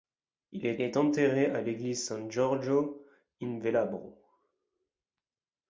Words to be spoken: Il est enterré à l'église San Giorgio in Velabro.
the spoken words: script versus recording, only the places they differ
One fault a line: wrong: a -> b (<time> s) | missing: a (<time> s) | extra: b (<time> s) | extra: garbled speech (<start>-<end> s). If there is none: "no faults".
extra: est (0.8 s)